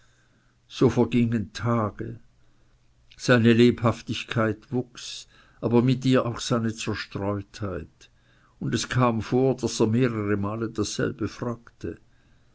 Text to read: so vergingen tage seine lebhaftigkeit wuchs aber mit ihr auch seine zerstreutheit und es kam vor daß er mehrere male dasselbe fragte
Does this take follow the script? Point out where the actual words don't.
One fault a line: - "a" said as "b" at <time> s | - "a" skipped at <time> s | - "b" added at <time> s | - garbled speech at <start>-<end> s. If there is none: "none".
none